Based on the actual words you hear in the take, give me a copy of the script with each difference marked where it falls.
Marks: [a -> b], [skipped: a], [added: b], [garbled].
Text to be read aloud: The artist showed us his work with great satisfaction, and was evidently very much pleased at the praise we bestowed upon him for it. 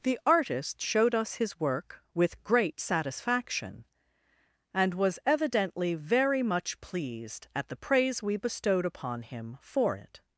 The artist showed us his work with great satisfaction, and was evidently very much pleased at the praise we bestowed upon him for it.